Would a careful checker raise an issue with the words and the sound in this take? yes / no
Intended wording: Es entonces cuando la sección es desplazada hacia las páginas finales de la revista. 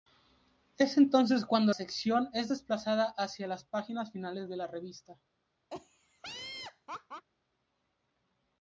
yes